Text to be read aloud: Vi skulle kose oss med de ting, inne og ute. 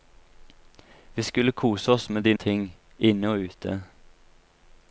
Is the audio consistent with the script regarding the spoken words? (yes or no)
yes